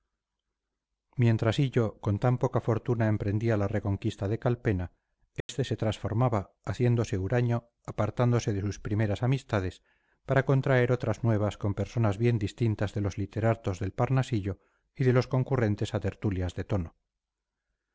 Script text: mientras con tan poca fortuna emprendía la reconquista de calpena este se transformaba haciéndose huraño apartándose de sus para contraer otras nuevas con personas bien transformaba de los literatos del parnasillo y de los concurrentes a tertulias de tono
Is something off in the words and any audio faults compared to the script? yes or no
yes